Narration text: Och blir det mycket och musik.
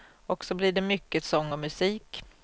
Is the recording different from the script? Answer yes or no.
yes